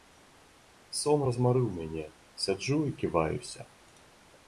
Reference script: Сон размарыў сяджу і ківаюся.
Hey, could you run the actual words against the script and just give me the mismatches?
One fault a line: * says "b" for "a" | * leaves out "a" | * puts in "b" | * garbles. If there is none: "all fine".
* puts in "мяне"